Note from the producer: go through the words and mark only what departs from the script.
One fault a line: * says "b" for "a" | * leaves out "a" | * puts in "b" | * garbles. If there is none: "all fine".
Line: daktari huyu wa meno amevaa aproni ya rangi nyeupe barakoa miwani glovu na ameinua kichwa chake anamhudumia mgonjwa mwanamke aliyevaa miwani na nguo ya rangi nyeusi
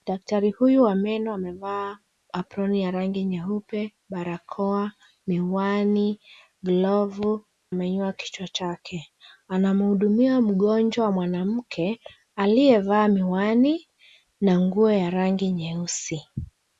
* leaves out "na"